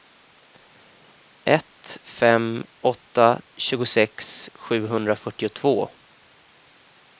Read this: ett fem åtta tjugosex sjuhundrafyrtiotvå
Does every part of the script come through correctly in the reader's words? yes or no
yes